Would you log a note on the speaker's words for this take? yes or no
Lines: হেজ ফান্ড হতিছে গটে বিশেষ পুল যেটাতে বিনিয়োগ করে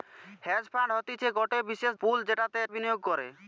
no